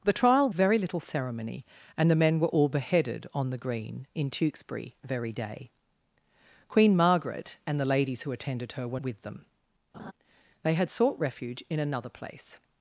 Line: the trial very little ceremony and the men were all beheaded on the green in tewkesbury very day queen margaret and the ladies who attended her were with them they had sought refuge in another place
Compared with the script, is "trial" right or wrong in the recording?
right